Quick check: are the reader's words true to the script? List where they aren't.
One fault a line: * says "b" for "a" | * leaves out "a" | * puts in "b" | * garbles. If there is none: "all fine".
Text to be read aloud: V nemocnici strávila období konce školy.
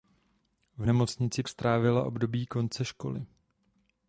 all fine